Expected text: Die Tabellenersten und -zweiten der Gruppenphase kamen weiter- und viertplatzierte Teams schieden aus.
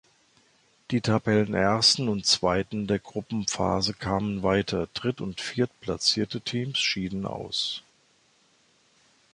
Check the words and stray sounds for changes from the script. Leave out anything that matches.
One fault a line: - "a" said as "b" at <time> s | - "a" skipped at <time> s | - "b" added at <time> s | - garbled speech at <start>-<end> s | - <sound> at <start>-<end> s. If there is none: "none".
- "dritt" added at 5.0 s